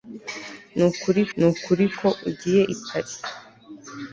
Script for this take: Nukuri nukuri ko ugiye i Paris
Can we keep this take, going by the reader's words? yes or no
yes